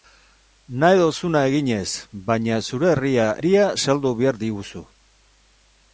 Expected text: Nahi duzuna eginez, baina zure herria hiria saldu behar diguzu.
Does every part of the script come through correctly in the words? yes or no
yes